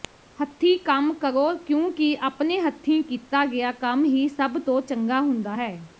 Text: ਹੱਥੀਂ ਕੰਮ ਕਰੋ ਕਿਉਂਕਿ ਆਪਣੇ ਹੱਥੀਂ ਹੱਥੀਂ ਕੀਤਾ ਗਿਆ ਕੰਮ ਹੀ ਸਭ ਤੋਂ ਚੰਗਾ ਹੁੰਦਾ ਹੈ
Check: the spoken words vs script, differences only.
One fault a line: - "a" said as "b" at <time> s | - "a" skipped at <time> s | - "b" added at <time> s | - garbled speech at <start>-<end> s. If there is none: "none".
- "ਹੱਥੀਂ" skipped at 3.0 s